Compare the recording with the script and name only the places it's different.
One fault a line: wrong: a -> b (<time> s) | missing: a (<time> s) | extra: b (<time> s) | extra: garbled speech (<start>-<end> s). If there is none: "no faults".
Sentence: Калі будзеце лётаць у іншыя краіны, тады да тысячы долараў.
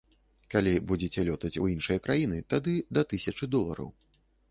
no faults